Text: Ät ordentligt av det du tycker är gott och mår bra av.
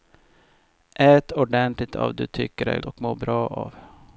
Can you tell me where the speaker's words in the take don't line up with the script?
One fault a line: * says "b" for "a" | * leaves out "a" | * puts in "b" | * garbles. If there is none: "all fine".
* leaves out "det"
* leaves out "gott"